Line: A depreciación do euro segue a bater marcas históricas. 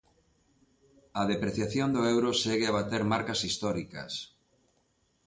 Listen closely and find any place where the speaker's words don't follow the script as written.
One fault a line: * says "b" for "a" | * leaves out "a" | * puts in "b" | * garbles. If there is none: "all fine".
all fine